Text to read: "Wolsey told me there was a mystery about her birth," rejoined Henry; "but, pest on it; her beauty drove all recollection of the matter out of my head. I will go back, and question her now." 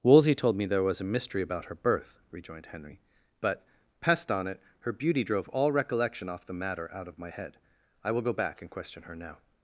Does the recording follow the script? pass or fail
fail